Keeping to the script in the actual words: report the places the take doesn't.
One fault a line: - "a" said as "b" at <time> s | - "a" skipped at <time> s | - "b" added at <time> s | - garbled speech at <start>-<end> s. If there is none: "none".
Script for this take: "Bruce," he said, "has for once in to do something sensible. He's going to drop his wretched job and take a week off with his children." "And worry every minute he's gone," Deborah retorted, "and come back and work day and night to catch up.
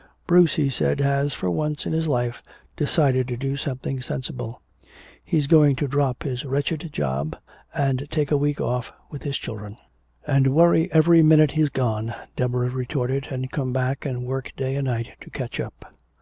- "his life decided" added at 1.9 s